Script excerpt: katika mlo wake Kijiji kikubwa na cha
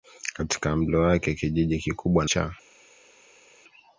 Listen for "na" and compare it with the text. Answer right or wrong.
wrong